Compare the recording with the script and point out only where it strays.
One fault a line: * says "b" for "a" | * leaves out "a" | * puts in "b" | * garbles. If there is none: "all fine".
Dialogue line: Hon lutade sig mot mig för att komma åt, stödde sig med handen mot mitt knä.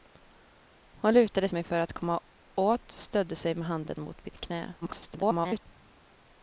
* leaves out "sig mot"
* garbles